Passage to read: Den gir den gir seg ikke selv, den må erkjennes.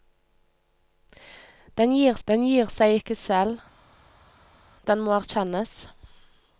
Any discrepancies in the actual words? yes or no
no